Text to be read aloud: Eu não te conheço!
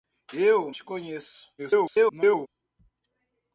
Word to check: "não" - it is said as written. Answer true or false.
false